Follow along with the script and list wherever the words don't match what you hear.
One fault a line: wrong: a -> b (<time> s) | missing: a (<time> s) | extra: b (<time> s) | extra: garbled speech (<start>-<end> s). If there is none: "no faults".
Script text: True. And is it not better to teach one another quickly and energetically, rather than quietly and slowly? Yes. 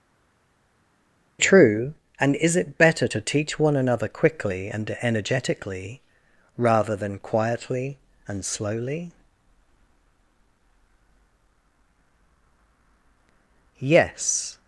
missing: not (2.8 s)